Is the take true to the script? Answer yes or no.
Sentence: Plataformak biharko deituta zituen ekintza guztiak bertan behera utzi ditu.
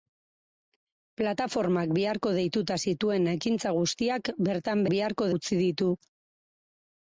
no